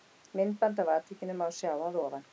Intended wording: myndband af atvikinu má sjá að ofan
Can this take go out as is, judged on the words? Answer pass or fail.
pass